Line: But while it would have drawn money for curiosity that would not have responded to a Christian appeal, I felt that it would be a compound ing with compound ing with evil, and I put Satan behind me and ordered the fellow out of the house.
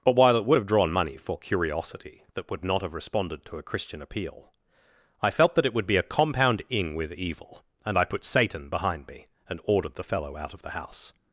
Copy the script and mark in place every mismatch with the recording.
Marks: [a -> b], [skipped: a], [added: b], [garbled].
But while it would have drawn money for curiosity that would not have responded to a Christian appeal, I felt that it would be a compound ing with [skipped: compound ing with] evil, and I put Satan behind me and ordered the fellow out of the house.